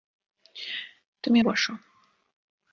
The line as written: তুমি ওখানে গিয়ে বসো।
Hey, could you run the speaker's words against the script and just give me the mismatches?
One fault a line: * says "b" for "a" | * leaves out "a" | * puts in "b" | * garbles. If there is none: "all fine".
* leaves out "ওখানে গিয়ে"